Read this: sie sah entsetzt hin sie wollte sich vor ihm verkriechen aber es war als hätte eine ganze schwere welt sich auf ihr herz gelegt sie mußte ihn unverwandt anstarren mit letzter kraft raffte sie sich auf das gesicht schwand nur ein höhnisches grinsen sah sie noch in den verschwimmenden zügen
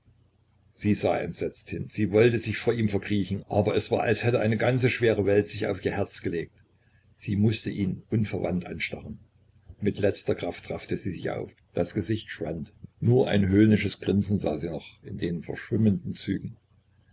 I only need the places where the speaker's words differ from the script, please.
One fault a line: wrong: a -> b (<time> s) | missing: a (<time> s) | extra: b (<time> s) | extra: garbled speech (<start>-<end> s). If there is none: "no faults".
no faults